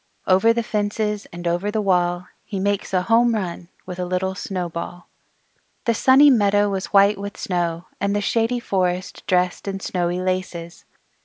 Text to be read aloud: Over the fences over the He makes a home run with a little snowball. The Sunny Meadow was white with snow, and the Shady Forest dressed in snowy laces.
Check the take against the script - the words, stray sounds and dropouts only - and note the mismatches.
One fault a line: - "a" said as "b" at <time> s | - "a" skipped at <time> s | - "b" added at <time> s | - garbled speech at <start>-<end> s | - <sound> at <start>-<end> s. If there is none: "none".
- "and" added at 1.3 s
- "wall" added at 1.8 s